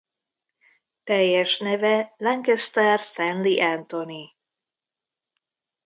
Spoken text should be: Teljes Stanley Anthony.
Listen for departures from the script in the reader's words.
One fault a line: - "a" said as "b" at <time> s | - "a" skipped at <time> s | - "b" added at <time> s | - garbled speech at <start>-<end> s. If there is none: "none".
- "neve Lancaster" added at 1.6 s